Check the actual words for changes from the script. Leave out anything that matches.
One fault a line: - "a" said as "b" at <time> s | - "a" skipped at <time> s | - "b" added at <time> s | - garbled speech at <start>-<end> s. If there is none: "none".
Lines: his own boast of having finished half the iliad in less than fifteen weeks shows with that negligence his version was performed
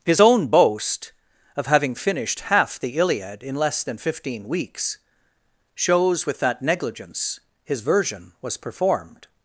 none